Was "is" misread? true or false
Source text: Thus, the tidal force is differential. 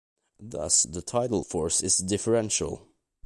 false